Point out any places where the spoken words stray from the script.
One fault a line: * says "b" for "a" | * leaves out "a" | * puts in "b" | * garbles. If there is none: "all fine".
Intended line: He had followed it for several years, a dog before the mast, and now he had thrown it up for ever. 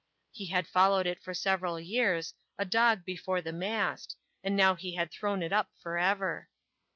all fine